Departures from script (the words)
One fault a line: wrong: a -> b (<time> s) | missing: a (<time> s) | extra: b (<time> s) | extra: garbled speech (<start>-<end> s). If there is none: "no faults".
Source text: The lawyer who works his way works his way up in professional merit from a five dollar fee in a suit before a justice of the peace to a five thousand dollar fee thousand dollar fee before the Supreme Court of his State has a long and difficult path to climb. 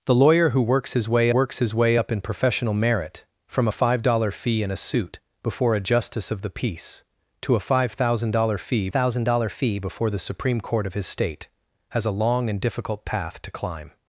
no faults